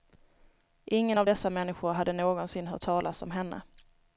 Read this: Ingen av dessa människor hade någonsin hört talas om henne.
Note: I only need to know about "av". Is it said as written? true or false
true